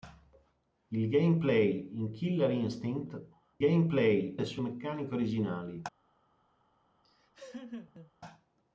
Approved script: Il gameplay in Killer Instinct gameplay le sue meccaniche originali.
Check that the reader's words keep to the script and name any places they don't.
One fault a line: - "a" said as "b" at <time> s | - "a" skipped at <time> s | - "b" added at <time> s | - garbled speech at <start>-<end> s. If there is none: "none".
none